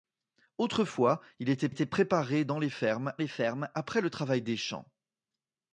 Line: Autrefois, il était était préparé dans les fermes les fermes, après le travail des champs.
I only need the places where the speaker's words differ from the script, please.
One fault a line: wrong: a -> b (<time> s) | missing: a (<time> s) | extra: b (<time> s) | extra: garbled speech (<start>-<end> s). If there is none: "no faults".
no faults